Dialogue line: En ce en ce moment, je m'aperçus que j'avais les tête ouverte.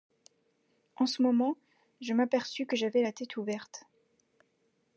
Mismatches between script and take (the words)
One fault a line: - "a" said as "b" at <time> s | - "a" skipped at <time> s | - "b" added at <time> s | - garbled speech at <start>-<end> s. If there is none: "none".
- "en ce" skipped at 1.2 s
- "les" said as "la" at 3.0 s